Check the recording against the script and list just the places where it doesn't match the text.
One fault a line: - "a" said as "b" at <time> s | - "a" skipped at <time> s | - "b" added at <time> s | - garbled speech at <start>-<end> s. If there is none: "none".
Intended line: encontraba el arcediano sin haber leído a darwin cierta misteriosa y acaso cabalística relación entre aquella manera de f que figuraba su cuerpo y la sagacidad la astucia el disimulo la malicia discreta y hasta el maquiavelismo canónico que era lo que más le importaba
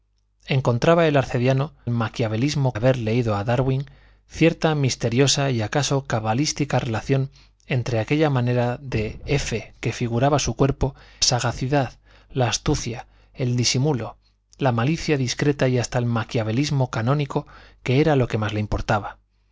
- "sin" said as "maquiavelismo" at 1.9 s
- "y la" skipped at 11.0 s